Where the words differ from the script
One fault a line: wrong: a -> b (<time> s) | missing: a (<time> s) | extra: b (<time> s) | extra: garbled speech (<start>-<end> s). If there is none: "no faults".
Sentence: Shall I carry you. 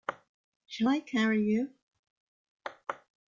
no faults